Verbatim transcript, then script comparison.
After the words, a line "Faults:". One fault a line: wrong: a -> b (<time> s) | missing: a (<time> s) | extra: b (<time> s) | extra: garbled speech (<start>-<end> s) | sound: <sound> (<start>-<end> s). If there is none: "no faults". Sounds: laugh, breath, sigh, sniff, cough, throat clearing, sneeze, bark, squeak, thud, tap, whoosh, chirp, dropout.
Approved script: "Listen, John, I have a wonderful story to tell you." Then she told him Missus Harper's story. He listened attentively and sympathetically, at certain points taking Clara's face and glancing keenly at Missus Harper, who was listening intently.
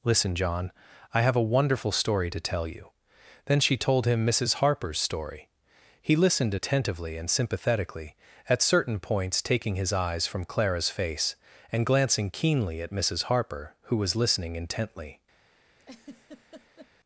"Listen, John, I have a wonderful story to tell you." Then she told him Missus Harper's story. He listened attentively and sympathetically, at certain points taking his eyes from Clara's face and glancing keenly at Missus Harper, who was listening intently.
Faults:
extra: his eyes from (9.7 s)
sound: laugh (15.8-16.9 s)